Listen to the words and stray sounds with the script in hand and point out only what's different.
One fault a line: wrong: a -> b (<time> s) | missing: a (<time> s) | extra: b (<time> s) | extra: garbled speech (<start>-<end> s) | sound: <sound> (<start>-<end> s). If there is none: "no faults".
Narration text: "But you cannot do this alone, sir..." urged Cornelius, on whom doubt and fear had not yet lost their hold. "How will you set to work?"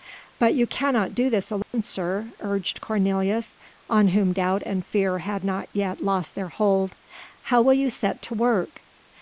sound: dropout (1.6-1.7 s)